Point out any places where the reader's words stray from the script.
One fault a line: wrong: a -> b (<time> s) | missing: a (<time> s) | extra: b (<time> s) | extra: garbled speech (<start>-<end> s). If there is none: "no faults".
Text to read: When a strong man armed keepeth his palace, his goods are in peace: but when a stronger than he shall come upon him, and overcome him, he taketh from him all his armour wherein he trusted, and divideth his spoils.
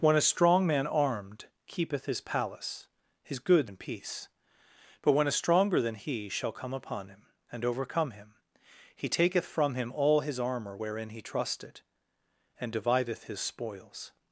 missing: are (3.7 s)